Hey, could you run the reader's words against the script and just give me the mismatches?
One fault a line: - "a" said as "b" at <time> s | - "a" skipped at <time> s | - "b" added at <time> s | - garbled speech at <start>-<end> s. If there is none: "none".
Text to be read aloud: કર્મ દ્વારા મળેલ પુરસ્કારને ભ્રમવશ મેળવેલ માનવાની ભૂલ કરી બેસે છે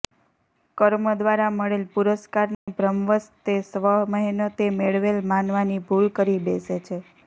- "તે સ્વમહેનતે" added at 3.4 s